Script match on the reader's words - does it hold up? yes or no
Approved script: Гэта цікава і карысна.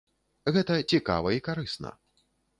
yes